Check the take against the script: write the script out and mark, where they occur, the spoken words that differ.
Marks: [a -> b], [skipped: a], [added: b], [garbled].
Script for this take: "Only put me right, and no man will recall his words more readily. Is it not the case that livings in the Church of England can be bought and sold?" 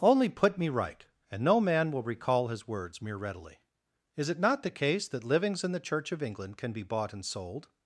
"Only put me right, and no man will recall his words [more -> mere] readily. Is it not the case that livings in the Church of England can be bought and sold?"